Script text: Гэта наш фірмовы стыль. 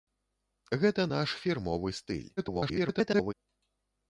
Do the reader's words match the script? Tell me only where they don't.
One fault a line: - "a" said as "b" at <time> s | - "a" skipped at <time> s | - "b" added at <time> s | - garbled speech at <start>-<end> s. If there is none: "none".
- garbled speech at 2.4-3.3 s